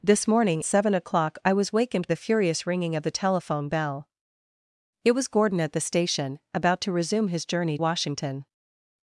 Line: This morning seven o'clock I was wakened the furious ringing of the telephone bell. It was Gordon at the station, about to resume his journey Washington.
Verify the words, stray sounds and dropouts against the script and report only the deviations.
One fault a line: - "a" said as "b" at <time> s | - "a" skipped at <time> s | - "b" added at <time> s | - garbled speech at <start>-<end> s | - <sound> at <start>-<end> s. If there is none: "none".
none